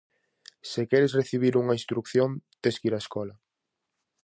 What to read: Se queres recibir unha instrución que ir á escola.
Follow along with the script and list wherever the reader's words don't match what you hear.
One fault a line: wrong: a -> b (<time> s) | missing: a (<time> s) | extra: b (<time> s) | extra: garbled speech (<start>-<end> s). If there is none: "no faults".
extra: tes (2.6 s)